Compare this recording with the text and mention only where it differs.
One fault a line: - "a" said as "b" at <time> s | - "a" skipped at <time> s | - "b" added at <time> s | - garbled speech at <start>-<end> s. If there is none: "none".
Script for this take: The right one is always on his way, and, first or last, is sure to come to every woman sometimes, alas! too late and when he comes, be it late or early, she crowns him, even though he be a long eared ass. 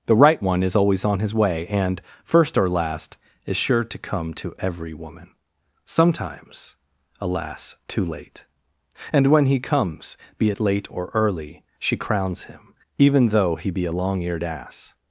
none